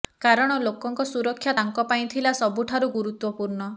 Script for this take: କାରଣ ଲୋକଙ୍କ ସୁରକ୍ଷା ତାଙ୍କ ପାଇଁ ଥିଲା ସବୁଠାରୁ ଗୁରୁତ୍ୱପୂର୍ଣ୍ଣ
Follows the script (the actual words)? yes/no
yes